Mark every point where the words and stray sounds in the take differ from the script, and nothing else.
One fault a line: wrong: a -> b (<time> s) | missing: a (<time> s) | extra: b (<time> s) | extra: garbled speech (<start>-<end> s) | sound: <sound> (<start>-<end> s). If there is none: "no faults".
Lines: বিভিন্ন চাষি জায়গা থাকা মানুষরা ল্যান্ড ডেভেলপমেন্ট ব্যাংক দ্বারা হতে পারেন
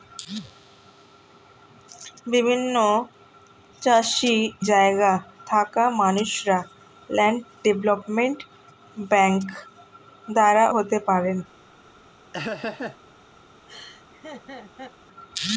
sound: laugh (12.3-13.0 s)
sound: laugh (13.7-14.9 s)